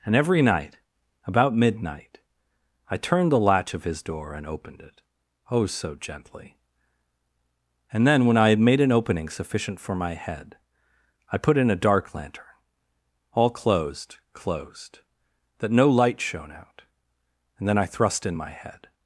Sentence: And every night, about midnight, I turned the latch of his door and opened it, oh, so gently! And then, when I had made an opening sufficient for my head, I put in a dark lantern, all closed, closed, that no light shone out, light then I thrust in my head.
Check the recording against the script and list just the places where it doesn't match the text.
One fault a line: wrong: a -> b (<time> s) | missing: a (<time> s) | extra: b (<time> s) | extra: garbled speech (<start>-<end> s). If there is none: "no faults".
wrong: light -> and (17.6 s)